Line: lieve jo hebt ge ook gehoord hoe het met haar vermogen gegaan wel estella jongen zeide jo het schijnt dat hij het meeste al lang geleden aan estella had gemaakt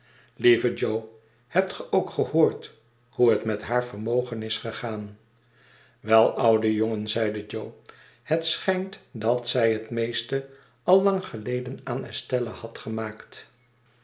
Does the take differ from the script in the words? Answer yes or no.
yes